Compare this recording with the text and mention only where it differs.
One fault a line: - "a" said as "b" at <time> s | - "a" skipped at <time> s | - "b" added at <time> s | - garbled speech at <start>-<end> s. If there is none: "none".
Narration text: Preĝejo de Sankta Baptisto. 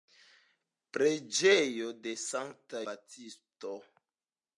none